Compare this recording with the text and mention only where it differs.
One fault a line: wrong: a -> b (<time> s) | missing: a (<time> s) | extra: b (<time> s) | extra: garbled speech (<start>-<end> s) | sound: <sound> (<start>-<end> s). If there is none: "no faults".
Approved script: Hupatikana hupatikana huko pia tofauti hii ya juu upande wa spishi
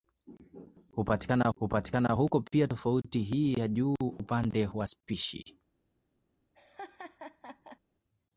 sound: laugh (6.5-7.8 s)